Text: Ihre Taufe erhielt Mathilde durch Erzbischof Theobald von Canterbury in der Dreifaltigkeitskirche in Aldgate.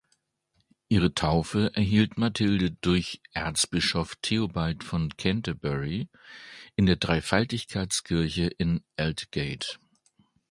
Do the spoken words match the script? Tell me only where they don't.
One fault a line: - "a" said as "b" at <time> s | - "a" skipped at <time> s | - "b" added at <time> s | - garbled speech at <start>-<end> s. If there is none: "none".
none